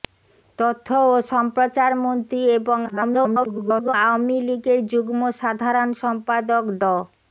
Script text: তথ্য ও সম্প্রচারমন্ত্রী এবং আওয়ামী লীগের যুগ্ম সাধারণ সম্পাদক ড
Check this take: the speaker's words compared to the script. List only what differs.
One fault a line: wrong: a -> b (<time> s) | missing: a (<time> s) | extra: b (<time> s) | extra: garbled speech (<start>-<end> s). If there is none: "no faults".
extra: garbled speech (2.9-3.9 s)